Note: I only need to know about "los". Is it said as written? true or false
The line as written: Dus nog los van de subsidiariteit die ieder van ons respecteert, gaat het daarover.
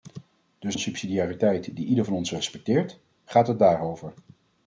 false